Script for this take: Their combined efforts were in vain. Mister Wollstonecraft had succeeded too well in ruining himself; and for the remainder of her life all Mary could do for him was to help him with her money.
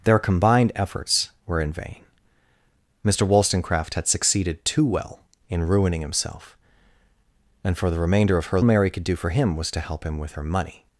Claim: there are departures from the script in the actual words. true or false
true